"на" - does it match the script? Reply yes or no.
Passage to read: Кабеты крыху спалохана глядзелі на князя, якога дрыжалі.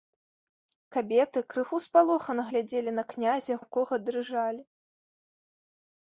yes